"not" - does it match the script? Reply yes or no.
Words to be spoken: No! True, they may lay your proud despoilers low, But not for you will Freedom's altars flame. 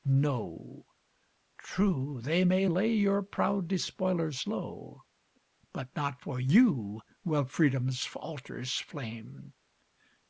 yes